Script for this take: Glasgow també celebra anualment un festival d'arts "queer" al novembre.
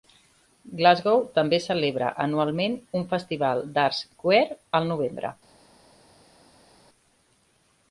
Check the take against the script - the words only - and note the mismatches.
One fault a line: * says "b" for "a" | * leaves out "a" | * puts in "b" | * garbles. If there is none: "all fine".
all fine